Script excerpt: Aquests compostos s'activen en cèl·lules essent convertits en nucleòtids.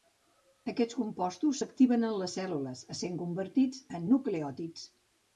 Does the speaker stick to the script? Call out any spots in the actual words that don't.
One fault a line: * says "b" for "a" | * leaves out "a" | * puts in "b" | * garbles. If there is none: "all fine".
* puts in "les"